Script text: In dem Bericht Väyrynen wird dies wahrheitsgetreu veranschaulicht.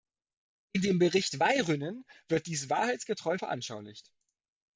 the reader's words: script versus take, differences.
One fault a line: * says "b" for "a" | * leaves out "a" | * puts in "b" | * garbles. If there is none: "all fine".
all fine